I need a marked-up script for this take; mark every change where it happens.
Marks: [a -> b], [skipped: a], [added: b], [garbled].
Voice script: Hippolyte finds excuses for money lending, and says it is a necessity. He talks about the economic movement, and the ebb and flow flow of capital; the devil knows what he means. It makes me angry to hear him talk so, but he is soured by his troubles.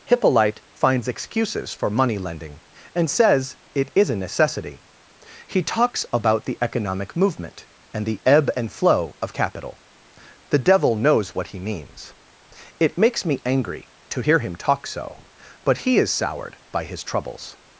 Hippolyte finds excuses for money lending, and says it is a necessity. He talks about the economic movement, and the ebb and flow [skipped: flow] of capital; the devil knows what he means. It makes me angry to hear him talk so, but he is soured by his troubles.